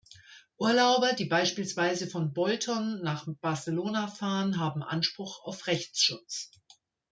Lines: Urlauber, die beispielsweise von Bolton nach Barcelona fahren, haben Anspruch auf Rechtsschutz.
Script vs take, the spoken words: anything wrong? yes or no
no